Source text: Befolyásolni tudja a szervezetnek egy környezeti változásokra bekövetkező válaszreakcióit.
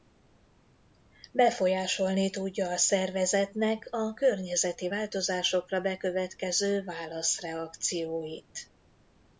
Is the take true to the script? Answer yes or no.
no